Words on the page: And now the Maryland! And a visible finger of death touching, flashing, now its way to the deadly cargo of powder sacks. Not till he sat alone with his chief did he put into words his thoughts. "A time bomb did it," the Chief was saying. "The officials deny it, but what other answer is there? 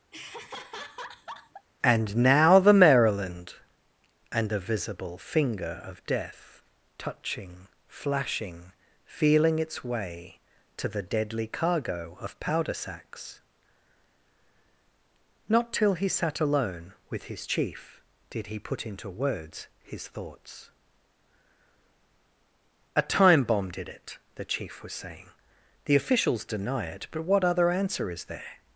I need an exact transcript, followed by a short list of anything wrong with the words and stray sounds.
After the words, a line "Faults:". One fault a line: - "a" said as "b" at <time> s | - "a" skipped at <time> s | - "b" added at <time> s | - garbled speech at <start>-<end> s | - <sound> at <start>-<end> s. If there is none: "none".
And now the Maryland! And a visible finger of death touching, flashing, feeling its way to the deadly cargo of powder sacks. Not till he sat alone with his chief did he put into words his thoughts. "A time bomb did it," the Chief was saying. "The officials deny it, but what other answer is there?
Faults:
- laugh at 0.1-1.7 s
- "now" said as "feeling" at 9.0 s